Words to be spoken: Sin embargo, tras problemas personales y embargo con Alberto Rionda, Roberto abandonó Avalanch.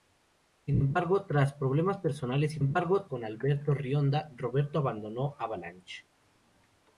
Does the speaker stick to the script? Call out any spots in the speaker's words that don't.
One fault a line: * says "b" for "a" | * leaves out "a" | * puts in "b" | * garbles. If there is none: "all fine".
all fine